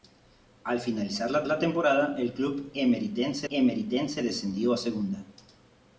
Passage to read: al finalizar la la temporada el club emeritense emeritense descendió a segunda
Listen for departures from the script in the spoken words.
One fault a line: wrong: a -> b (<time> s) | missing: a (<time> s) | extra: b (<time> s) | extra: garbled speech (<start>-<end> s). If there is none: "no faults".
no faults